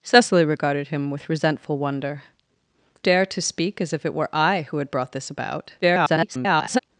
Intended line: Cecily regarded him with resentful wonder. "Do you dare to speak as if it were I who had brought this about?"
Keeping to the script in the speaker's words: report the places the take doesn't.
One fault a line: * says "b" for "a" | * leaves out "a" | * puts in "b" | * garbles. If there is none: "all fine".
* leaves out "Do you"
* garbles